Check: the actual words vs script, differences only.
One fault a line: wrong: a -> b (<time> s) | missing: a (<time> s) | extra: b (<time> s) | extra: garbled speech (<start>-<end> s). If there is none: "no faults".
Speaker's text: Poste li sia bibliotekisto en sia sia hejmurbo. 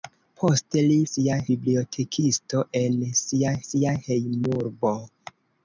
no faults